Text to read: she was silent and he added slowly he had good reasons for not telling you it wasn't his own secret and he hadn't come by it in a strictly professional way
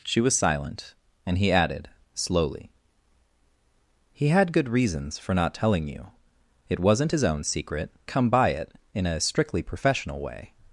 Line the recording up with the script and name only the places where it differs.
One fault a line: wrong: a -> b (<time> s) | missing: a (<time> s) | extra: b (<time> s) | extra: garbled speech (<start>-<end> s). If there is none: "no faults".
missing: and he hadn't (7.9 s)